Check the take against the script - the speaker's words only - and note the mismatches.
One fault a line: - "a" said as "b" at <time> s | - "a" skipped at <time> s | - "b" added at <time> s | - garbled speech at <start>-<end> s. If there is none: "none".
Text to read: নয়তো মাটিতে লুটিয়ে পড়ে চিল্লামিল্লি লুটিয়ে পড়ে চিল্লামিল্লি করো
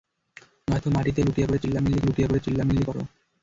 none